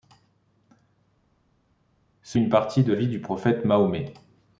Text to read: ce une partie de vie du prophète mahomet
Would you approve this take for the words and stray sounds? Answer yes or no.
yes